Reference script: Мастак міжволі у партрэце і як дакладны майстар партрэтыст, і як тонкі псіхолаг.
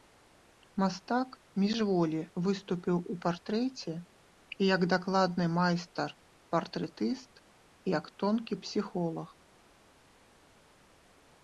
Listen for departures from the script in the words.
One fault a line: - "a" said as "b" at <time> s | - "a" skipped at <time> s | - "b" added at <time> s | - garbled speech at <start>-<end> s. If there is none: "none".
- "выступіў" added at 2.5 s